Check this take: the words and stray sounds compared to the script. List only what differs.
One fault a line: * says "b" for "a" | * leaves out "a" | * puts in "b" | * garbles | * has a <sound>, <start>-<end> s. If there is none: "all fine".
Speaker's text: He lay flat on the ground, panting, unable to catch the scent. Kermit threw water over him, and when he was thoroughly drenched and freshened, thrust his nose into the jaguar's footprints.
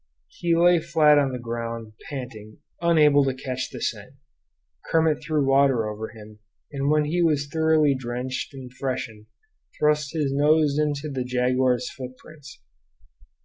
all fine